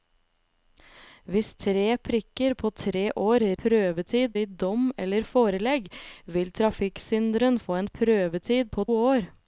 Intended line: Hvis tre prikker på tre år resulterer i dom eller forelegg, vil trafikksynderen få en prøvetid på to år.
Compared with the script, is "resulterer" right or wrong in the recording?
wrong